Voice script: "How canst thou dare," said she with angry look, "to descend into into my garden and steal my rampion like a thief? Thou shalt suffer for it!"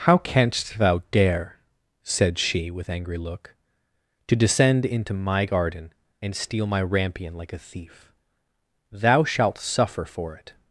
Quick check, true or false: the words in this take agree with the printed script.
false